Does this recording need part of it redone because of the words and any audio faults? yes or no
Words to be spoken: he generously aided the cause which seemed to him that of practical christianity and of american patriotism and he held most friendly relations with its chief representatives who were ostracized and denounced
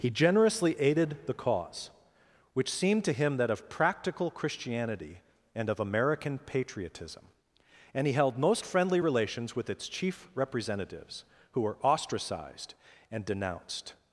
no